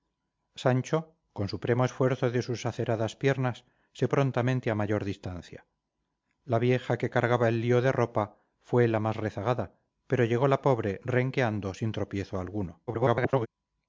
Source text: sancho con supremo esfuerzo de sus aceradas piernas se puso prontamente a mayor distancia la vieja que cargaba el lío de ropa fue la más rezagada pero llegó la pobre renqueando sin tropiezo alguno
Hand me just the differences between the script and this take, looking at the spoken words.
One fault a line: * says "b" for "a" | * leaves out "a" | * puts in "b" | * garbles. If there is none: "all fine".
* leaves out "puso"
* garbles